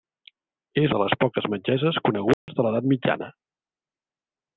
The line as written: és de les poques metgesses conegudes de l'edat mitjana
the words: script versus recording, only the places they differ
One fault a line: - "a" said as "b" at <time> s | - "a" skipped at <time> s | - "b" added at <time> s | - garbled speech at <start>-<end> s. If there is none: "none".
none